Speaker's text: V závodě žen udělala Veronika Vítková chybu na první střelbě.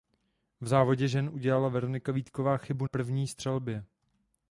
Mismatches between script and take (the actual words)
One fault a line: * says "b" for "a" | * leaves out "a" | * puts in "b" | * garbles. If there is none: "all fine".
* leaves out "na"